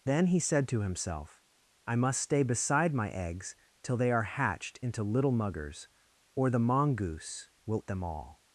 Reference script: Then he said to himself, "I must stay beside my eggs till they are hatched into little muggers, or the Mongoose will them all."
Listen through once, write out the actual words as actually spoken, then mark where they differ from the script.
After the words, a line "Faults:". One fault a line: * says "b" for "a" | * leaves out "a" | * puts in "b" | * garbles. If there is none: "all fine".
Then he said to himself, "I must stay beside my eggs till they are hatched into little muggers, or the Mongoose will them all."
Faults:
all fine